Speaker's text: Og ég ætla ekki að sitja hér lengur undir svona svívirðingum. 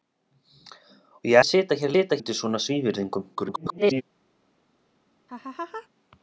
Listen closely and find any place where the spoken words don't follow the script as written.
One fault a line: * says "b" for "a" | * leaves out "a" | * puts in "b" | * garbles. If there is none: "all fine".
* leaves out "ætla"
* says "sitja" for "lengur"
* garbles